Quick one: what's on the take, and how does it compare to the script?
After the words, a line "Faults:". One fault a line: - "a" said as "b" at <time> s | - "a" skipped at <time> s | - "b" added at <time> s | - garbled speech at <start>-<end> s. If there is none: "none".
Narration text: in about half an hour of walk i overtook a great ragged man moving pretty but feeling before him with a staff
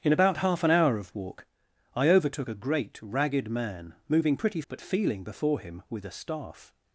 in about half an hour of walk i overtook a great ragged man moving pretty but feeling before him with a staff
Faults:
none